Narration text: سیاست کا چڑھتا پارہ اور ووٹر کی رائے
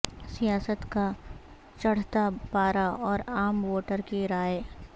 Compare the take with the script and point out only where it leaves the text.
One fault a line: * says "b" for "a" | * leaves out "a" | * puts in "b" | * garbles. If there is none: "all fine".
* puts in "عام"